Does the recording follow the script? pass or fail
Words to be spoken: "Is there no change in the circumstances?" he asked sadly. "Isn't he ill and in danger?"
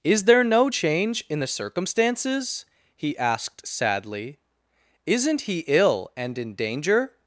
pass